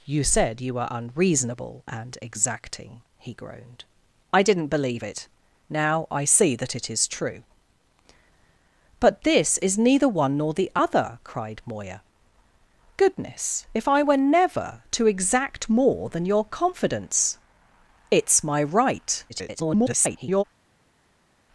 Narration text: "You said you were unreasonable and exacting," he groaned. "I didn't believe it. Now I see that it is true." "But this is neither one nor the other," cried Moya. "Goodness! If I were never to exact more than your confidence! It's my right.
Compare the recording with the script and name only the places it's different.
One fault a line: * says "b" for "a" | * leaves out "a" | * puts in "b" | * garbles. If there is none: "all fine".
* garbles